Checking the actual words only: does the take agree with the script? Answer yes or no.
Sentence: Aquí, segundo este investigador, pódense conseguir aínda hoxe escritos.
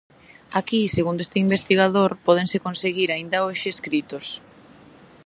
yes